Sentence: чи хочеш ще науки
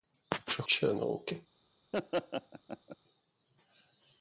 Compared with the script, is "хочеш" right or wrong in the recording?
wrong